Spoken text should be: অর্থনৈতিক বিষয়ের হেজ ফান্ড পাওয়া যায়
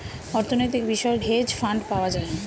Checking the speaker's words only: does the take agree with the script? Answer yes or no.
yes